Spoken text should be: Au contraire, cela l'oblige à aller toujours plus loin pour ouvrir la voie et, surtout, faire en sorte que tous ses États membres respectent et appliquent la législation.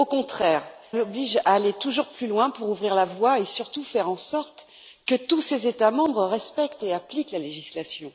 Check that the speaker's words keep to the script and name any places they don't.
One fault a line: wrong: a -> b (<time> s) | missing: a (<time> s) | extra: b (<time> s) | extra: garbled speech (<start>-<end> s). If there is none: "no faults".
missing: cela (0.6 s)